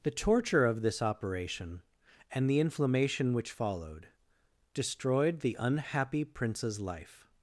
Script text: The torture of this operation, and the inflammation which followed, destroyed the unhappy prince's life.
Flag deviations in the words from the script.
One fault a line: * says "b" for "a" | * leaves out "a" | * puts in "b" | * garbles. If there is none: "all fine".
all fine